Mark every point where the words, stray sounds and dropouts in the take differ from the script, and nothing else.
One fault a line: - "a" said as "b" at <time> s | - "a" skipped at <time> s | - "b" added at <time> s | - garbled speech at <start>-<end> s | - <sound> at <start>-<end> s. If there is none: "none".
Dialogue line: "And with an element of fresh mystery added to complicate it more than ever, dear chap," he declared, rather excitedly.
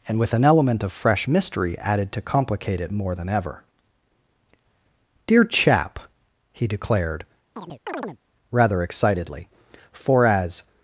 - chirp at 7.6-8.2 s
- "For as" added at 9.9 s